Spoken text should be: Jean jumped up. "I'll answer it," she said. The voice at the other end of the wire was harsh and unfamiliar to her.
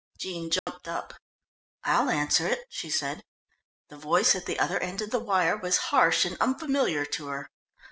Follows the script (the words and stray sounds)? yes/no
no